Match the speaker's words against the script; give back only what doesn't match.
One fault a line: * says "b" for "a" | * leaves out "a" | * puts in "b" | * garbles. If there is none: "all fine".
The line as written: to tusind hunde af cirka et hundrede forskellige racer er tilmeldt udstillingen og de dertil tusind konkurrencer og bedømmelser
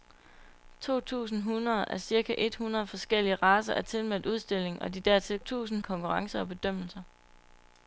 all fine